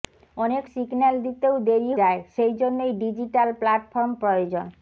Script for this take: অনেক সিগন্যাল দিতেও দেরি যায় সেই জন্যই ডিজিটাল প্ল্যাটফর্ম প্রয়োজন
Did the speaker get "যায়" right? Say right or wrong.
right